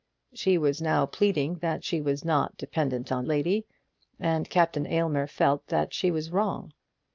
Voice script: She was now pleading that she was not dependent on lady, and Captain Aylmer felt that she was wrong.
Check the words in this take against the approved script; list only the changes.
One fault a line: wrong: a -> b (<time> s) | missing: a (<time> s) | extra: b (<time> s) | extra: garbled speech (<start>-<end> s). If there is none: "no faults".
no faults